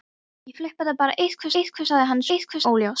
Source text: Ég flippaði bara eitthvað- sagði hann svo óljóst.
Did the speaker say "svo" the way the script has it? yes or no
no